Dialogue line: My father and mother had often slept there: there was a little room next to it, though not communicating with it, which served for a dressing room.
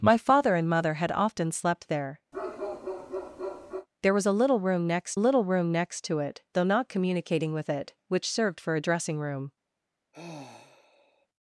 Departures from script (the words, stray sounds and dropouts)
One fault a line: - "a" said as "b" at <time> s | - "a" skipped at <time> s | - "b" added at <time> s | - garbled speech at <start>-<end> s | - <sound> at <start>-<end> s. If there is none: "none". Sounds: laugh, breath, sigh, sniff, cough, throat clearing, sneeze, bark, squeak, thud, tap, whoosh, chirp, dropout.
- bark at 2.3-3.9 s
- "little room next" added at 5.2 s
- sigh at 10.1-11.3 s